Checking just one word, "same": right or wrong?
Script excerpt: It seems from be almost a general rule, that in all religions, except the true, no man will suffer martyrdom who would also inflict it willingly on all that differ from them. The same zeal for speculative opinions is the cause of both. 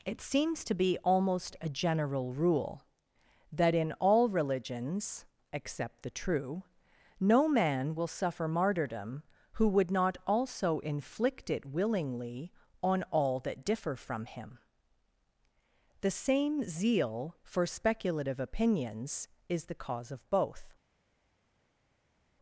right